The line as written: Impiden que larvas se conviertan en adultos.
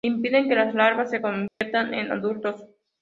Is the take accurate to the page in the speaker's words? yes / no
no